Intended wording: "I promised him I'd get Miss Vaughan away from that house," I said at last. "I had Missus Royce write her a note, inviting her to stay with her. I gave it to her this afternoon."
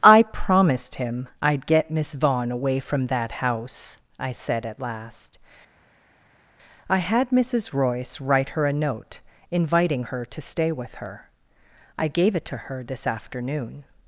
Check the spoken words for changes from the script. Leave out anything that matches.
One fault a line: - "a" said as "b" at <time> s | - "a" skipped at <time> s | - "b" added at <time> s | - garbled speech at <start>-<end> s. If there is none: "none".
none